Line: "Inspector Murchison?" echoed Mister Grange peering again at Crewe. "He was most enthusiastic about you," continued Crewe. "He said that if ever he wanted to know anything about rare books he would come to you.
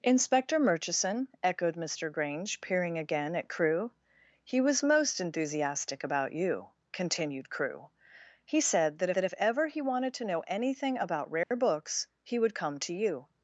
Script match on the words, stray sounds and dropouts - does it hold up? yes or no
no